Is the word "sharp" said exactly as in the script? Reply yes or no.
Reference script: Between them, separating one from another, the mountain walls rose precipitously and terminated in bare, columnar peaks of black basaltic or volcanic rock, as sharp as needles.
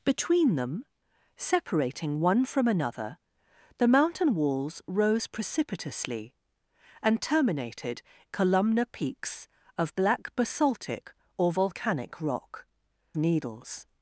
no